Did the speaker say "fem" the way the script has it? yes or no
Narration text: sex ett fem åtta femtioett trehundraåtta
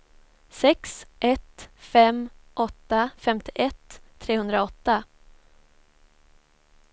yes